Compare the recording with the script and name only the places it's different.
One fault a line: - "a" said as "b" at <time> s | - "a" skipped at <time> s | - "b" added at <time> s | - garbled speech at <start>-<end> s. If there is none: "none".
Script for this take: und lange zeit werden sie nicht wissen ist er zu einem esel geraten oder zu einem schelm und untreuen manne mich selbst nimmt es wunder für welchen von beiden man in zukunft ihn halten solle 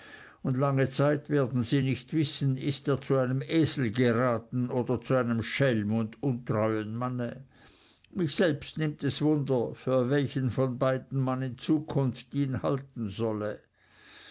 none